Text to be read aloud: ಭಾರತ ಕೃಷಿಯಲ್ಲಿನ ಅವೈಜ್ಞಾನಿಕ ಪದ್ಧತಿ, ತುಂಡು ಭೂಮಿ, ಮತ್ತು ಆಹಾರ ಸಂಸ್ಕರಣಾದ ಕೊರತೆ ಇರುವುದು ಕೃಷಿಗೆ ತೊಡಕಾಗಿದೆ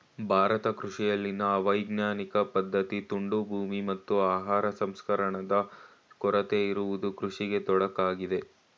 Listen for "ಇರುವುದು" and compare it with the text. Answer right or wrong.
right